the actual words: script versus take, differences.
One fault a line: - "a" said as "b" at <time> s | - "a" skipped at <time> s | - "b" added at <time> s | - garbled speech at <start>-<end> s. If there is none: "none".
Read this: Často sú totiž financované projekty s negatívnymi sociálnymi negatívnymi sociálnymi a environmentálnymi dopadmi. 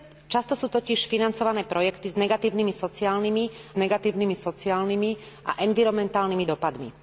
none